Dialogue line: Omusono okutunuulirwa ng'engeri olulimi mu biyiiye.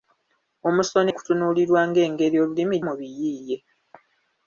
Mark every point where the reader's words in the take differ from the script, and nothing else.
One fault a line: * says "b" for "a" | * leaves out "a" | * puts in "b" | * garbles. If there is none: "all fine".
all fine